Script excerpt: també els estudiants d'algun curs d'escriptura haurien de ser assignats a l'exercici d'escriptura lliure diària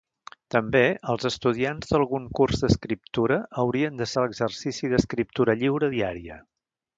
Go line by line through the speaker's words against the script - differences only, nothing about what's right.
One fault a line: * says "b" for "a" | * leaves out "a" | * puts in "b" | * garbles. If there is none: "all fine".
* leaves out "ser assignats"